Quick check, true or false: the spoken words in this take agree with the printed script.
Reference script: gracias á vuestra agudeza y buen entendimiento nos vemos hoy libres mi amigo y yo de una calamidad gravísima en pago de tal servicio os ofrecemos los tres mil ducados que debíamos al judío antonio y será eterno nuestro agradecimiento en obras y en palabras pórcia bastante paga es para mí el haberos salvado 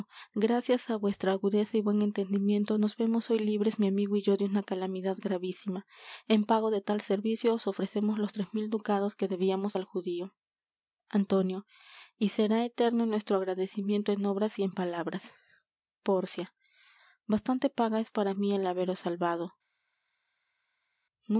true